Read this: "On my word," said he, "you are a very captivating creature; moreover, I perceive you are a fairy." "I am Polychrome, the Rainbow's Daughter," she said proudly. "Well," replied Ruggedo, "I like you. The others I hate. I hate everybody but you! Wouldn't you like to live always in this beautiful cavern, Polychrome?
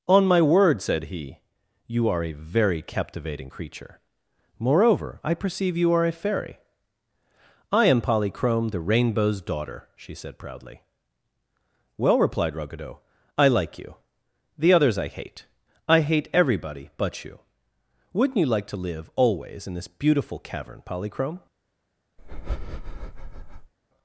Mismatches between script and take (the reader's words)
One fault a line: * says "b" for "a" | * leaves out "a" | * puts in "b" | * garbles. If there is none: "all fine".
all fine